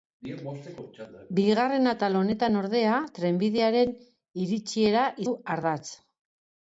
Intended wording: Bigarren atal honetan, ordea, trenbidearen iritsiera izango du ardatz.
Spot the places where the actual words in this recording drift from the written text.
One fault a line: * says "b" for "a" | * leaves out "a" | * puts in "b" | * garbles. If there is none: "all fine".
* leaves out "izango"